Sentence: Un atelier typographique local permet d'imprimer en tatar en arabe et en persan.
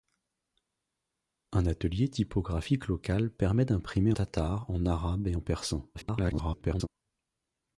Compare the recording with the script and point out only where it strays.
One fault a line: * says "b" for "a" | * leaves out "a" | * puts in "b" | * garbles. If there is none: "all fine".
* leaves out "en"
* garbles